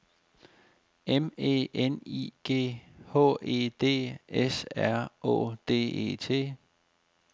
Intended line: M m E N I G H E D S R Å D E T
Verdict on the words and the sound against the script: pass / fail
fail